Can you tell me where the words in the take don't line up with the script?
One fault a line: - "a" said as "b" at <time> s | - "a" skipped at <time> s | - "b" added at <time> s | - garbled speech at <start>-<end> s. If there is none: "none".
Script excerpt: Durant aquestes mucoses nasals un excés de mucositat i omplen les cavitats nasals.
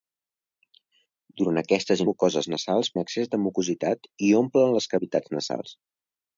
none